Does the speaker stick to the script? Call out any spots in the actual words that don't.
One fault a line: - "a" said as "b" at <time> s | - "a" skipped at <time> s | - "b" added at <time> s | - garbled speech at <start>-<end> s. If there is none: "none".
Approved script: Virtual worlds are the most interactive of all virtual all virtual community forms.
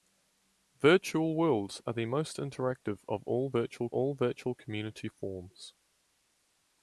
none